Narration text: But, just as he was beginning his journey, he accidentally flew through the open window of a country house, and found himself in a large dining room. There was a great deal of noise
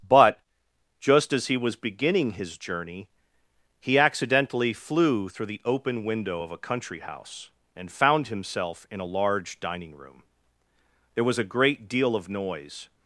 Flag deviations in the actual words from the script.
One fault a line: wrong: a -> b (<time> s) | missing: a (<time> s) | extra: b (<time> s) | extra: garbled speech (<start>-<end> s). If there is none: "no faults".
no faults